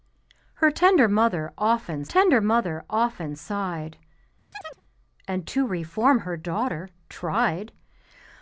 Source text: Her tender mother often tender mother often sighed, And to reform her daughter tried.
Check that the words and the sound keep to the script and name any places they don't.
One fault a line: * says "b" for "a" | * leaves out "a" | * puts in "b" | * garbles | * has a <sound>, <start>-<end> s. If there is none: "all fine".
* has a chirp, 4.5-4.8 s